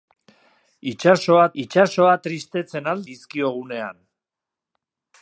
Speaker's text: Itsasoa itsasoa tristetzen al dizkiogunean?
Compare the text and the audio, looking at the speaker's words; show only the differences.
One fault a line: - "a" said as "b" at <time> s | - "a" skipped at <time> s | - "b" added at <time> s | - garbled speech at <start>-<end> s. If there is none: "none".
none